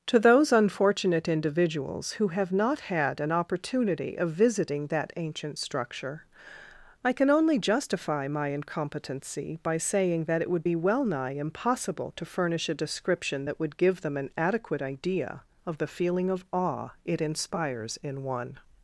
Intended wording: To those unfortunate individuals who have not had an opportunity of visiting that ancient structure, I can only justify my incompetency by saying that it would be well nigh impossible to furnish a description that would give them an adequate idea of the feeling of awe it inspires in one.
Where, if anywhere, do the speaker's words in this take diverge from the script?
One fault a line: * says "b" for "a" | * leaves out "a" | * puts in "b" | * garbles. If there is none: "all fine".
all fine